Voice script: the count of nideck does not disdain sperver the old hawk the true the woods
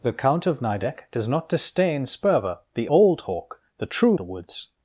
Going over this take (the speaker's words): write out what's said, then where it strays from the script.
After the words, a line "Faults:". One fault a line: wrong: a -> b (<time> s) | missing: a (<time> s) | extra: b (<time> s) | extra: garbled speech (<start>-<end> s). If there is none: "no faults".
the count of nideck does not disdain sperver the old hawk the true the woods
Faults:
no faults